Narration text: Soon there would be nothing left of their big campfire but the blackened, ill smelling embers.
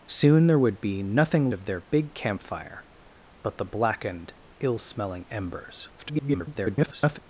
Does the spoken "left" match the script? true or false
false